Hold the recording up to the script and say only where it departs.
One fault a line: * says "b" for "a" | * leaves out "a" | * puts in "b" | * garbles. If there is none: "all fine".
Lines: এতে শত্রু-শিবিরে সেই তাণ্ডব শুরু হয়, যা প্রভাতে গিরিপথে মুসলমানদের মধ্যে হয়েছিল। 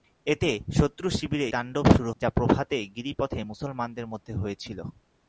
* leaves out "সেই"
* leaves out "হয়"